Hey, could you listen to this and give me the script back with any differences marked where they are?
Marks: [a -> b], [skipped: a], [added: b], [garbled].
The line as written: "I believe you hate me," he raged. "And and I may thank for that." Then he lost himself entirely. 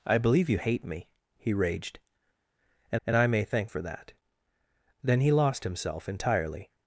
"I believe you hate me," he raged. "And and I may thank for that." Then he lost himself entirely.